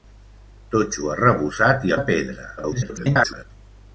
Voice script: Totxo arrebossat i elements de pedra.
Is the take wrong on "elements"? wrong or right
wrong